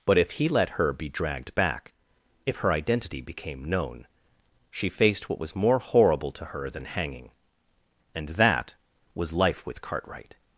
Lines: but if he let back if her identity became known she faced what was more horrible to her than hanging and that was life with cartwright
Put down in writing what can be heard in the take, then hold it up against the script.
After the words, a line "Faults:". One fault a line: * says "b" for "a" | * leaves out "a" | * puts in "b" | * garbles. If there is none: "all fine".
but if he let her be dragged back if her identity became known she faced what was more horrible to her than hanging and that was life with cartwright
Faults:
* puts in "her be dragged"